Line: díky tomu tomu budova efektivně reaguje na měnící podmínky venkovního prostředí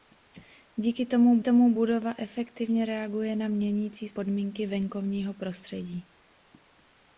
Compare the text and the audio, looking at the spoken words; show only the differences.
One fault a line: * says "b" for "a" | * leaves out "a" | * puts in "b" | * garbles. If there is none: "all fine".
all fine